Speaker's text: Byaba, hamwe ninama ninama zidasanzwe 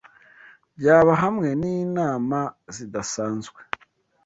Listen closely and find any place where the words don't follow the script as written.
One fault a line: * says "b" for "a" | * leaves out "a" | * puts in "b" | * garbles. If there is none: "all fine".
* leaves out "ninama"